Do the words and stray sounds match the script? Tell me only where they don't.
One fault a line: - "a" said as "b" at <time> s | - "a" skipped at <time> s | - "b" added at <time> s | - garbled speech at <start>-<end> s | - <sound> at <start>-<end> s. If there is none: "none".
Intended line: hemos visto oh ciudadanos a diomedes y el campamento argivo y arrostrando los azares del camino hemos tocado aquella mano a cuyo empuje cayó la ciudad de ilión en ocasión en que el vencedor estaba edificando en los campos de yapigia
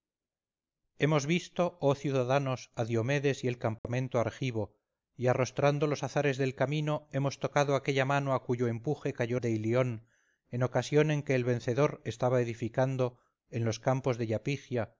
- dropout at 3.8-3.8 s
- "la ciudad" skipped at 9.4 s